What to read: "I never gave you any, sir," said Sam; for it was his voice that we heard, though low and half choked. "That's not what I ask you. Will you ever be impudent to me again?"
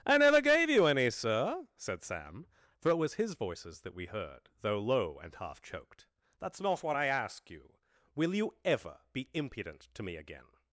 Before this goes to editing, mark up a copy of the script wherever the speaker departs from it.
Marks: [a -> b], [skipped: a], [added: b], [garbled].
"I never gave you any, sir," said Sam; for it was his [voice -> voices] that we heard, though low and half choked. "That's not what I ask you. Will you ever be impudent to me again?"